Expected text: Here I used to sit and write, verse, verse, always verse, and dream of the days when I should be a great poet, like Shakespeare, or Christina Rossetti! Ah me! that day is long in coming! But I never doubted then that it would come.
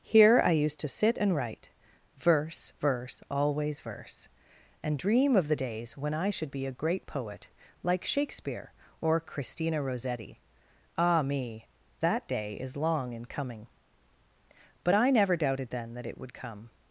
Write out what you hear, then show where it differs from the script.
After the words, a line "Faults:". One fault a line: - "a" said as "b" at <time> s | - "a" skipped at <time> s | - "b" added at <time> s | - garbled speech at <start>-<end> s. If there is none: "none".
Here I used to sit and write, verse, verse, always verse, and dream of the days when I should be a great poet, like Shakespeare, or Christina Rossetti! Ah me! that day is long in coming! But I never doubted then that it would come.
Faults:
none